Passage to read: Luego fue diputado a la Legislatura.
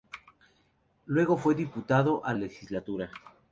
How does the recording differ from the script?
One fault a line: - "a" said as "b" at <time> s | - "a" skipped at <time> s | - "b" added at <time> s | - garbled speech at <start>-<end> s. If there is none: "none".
- "la" skipped at 2.3 s